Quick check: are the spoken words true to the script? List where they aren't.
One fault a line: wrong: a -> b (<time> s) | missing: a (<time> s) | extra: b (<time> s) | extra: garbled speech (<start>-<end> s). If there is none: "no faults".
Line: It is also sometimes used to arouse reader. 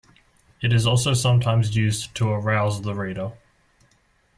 extra: the (2.8 s)